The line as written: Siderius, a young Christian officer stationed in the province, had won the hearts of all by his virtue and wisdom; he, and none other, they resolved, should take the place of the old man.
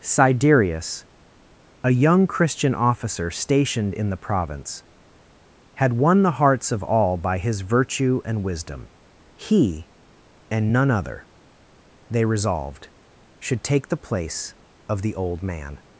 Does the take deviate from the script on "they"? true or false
false